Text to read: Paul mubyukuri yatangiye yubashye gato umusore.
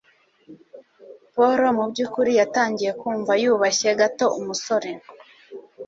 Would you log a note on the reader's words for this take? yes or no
yes